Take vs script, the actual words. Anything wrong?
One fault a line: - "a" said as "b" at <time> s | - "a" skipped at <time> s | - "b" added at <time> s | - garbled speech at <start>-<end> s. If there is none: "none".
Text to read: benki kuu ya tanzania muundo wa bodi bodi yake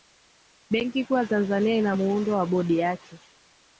- "ina" added at 1.8 s
- "bodi" skipped at 2.8 s